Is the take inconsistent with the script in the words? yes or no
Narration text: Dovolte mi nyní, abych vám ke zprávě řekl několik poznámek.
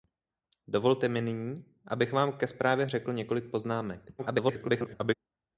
yes